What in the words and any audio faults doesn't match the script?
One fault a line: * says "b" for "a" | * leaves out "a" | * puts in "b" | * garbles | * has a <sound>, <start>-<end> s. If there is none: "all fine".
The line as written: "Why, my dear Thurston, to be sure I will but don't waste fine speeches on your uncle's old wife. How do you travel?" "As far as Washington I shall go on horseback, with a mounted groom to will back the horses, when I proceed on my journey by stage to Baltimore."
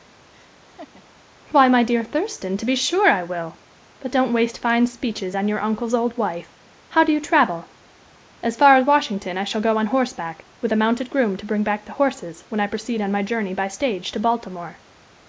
* has a laugh, 0.3-1.0 s
* says "bring" for "will"